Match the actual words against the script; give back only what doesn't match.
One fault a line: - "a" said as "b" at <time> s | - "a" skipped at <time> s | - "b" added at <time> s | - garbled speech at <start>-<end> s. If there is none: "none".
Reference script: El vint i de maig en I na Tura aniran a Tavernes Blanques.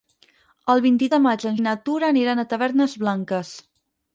none